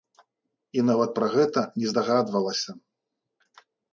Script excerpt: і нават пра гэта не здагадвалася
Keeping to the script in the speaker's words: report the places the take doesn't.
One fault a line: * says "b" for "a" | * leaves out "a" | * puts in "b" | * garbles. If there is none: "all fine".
all fine